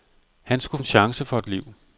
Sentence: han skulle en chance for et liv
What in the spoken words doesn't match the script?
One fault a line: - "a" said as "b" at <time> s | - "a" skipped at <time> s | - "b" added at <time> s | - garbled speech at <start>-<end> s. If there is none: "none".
none